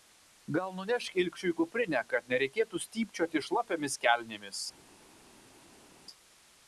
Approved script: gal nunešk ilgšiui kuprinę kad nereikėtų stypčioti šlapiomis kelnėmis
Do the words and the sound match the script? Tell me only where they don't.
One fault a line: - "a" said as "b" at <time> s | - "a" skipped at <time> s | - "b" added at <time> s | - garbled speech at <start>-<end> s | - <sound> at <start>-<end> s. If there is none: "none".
none